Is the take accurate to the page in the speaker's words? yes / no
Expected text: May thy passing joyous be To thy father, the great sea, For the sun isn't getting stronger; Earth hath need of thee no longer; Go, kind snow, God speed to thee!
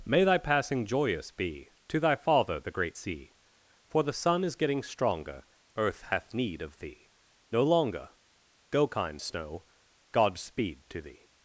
no